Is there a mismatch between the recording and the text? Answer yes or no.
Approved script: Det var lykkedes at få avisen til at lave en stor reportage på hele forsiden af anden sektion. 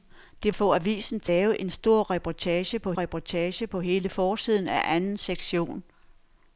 yes